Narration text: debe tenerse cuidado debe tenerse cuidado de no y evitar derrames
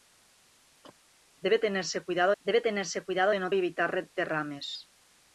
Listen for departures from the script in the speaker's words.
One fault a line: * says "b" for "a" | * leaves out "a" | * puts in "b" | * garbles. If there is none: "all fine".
all fine